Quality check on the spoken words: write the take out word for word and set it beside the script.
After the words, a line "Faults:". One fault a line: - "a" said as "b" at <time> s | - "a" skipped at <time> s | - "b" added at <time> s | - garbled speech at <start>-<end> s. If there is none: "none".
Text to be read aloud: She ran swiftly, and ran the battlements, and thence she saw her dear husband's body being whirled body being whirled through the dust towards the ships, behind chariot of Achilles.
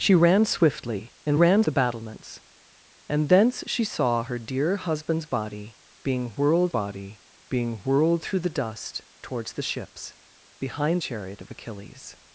She ran swiftly, and ran the battlements, and thence she saw her dear husband's body being whirled body being whirled through the dust towards the ships, behind chariot of Achilles.
Faults:
none